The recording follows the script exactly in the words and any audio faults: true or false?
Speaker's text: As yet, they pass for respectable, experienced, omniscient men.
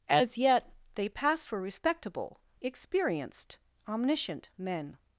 true